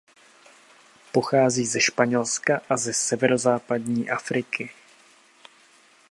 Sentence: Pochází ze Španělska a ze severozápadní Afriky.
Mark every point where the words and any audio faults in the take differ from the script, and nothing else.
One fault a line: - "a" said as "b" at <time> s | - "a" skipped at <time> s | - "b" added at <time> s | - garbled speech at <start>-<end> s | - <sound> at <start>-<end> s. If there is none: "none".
none